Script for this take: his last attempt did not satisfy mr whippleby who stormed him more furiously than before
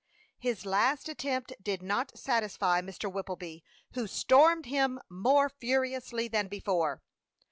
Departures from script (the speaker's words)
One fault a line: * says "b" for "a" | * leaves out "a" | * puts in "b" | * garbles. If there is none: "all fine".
all fine